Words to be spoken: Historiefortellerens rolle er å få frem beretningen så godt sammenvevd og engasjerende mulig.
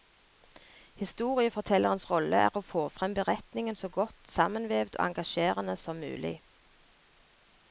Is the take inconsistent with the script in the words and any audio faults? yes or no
yes